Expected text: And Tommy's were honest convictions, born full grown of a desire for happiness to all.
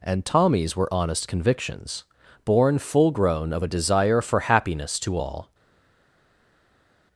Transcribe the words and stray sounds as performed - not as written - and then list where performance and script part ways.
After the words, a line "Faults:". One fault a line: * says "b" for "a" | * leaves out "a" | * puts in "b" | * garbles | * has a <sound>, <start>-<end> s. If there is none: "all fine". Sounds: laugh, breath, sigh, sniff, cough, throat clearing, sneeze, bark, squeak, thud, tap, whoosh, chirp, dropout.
And Tommy's were honest convictions, born full grown of a desire for happiness to all.
Faults:
all fine